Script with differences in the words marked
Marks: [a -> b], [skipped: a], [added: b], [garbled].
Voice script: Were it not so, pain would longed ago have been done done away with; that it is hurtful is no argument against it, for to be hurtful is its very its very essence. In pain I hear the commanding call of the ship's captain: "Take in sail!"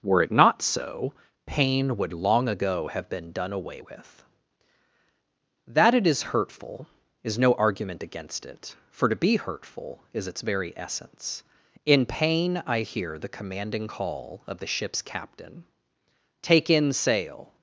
Were it not so, pain would [longed -> long] ago have been done [skipped: done] away with; that it is hurtful is no argument against it, for to be hurtful is its very [skipped: its very] essence. In pain I hear the commanding call of the ship's captain: "Take in sail!"